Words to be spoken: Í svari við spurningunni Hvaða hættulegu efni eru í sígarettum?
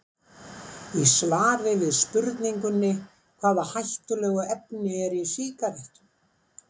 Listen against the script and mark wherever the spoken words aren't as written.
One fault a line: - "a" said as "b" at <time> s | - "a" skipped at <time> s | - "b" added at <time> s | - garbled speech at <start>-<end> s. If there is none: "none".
none